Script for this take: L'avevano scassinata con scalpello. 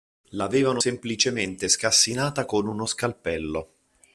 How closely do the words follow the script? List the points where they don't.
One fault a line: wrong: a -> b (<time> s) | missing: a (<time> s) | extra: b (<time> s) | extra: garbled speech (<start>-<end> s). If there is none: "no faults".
extra: semplicemente (0.7 s)
extra: uno (2.7 s)